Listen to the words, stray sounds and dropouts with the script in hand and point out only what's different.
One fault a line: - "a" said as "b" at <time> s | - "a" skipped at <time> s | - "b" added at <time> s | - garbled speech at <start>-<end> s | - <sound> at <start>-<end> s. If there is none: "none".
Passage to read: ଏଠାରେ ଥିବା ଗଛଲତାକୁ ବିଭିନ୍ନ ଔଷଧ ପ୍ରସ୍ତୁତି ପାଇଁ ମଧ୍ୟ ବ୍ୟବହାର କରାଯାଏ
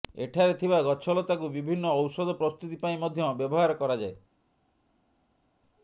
none